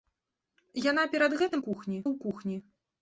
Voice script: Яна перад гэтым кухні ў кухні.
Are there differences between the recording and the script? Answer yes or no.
no